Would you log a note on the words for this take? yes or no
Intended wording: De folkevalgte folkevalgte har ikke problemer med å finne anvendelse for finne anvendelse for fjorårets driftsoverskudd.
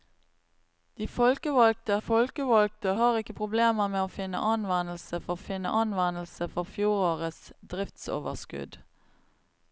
no